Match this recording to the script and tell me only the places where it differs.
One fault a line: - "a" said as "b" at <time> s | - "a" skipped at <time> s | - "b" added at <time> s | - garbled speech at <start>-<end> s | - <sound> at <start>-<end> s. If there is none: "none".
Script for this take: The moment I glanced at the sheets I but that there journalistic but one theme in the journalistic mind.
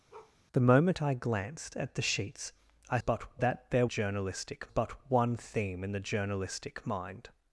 - bark at 0.1-0.4 s